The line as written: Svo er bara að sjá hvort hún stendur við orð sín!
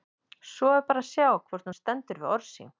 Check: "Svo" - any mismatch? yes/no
no